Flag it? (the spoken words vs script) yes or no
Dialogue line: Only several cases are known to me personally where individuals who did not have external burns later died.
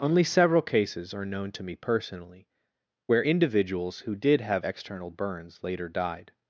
yes